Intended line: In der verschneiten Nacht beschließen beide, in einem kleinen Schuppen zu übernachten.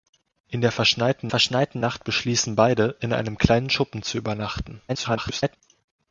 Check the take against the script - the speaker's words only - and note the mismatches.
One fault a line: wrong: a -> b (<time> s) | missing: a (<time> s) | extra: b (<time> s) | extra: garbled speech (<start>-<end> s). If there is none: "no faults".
extra: verschneiten (1.3 s)
extra: garbled speech (4.9-5.6 s)